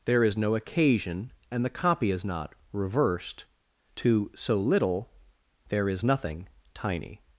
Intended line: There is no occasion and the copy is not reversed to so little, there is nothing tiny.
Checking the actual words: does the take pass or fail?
pass